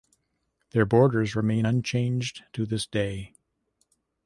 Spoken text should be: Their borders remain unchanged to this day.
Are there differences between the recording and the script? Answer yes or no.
no